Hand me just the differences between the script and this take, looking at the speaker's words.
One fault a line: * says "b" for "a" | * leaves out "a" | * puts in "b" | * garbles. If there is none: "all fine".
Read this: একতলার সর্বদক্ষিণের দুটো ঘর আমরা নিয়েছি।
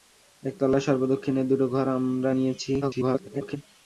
* garbles